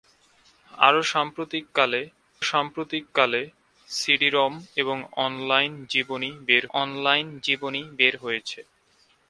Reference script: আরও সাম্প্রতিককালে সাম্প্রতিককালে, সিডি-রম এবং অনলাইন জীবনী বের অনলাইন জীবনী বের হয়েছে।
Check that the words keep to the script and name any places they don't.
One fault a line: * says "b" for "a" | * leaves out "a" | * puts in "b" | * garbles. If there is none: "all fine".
all fine